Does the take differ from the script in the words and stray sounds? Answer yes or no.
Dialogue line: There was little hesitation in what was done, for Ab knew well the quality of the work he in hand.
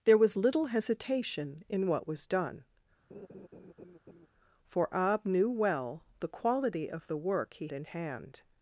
yes